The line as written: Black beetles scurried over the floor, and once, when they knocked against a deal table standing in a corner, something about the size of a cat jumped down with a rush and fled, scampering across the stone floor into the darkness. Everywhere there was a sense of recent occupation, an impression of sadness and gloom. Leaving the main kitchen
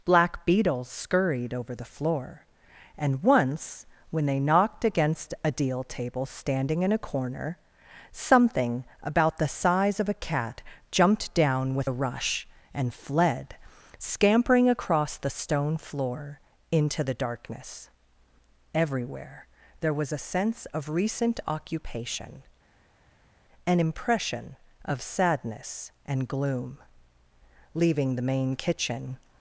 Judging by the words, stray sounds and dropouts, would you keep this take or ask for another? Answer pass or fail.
pass